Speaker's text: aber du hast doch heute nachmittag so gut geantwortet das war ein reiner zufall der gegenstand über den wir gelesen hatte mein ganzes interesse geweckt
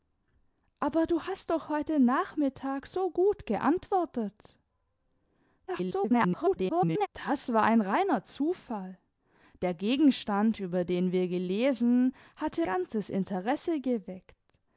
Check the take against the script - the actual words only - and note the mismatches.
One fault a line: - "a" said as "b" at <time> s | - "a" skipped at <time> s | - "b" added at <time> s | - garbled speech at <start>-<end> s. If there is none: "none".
- garbled speech at 5.7-7.1 s
- "mein" skipped at 12.7 s